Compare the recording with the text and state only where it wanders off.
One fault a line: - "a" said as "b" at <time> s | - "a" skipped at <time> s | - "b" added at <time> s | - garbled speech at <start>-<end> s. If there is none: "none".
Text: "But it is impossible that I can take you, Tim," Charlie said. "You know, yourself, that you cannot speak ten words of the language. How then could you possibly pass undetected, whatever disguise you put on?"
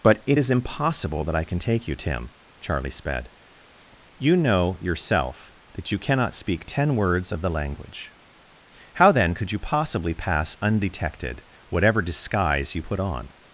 - "said" said as "sped" at 2.9 s